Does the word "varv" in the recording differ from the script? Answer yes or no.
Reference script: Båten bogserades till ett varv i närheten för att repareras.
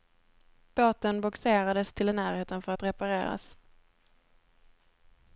yes